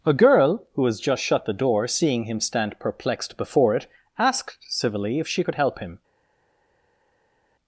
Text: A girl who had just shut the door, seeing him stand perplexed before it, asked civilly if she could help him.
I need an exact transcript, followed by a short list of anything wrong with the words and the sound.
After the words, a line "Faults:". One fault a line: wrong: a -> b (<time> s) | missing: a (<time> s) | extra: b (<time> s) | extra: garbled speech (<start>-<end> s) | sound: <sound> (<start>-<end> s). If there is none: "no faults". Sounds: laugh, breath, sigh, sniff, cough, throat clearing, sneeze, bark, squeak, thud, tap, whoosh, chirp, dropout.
A girl who has just shut the door, seeing him stand perplexed before it, asked civilly if she could help him.
Faults:
wrong: had -> has (0.8 s)